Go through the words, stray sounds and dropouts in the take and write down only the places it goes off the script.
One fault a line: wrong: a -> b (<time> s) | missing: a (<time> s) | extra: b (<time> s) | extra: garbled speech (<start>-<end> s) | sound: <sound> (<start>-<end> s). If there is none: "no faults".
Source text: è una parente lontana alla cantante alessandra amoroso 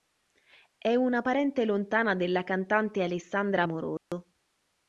wrong: alla -> della (2.2 s)
sound: dropout (4.0-4.1 s)